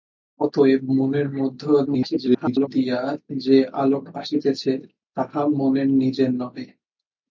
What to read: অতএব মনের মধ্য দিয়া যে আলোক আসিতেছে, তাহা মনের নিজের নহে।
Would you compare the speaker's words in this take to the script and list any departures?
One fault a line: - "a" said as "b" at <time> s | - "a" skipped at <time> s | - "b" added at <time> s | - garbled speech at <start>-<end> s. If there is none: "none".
- garbled speech at 1.9-2.7 s